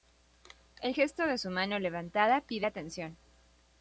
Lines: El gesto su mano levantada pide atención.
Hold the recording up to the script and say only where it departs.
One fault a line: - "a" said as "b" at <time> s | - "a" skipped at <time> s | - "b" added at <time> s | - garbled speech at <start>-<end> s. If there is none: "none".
- "de" added at 1.3 s